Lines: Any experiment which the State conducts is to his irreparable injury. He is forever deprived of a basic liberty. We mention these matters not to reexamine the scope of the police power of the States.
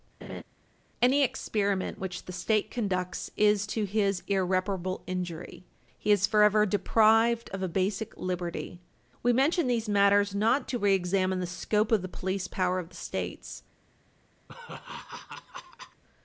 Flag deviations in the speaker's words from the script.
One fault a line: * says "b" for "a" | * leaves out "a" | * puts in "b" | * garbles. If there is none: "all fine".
all fine